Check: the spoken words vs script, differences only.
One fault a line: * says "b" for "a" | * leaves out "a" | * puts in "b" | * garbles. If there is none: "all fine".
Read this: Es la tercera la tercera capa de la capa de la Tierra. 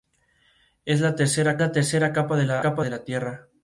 all fine